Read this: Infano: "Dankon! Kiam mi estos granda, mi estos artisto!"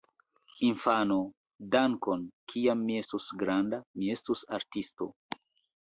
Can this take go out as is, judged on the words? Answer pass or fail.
pass